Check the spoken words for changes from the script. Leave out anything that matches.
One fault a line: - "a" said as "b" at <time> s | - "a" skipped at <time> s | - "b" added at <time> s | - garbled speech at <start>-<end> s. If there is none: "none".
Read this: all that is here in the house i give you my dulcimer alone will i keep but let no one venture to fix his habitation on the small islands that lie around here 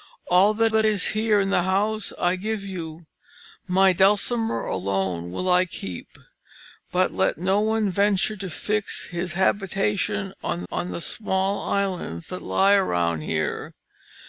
- "that" added at 0.7 s
- "on" added at 10.7 s